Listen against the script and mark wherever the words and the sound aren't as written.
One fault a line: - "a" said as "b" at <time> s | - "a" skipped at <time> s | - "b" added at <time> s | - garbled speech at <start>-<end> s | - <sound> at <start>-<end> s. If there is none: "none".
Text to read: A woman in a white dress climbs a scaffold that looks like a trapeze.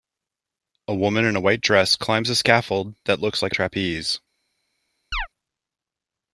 - chirp at 5.1-5.3 s